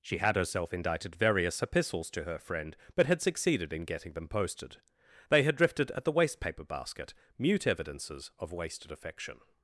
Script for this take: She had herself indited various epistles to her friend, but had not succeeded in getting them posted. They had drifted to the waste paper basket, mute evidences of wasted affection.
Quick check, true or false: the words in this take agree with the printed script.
false